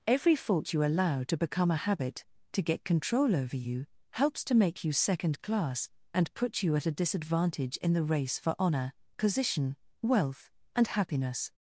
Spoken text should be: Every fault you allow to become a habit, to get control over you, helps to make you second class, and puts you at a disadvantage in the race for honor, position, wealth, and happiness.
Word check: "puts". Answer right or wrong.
wrong